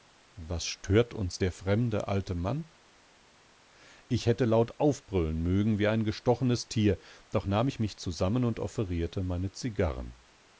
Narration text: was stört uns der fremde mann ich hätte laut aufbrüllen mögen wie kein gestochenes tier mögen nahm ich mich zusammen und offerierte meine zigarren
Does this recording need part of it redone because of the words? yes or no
yes